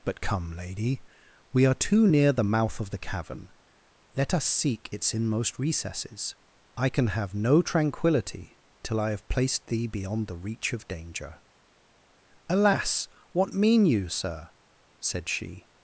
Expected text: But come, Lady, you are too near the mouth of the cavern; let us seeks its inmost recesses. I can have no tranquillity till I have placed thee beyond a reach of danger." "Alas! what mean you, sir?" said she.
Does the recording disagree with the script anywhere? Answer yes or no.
yes